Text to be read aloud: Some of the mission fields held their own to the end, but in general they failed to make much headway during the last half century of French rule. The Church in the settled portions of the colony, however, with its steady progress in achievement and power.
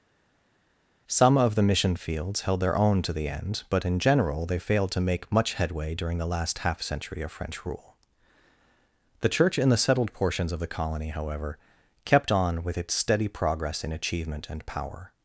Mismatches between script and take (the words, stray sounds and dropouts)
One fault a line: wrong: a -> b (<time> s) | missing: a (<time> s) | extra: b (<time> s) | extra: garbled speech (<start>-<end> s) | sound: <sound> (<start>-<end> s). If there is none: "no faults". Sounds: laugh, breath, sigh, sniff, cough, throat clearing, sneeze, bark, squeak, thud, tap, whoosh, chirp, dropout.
extra: kept on (12.0 s)